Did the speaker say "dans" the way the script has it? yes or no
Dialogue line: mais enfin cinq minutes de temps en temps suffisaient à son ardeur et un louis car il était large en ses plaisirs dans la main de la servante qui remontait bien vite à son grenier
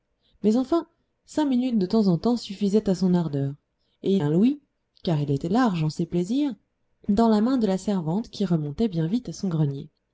yes